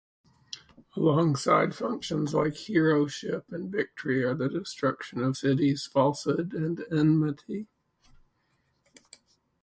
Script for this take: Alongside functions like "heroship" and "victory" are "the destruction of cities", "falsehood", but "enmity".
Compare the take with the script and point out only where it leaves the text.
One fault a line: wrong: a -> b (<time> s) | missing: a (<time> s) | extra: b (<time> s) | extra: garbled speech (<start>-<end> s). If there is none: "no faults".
wrong: but -> and (6.5 s)